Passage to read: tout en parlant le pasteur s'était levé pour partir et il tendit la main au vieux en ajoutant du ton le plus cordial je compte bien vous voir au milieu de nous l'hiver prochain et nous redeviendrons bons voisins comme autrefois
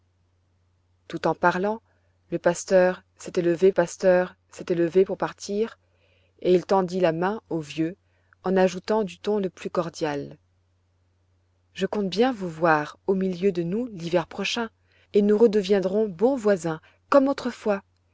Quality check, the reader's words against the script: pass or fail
fail